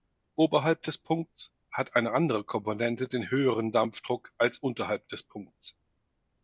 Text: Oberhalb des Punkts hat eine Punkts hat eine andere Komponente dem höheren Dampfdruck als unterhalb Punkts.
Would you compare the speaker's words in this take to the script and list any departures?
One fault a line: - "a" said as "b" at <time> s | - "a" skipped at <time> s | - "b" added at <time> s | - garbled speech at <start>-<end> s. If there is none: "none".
- "Punkts hat eine" skipped at 2.1 s
- "dem" said as "den" at 3.1 s
- "des" added at 5.1 s